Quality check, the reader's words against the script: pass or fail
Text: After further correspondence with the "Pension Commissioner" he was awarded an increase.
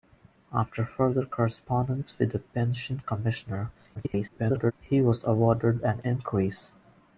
fail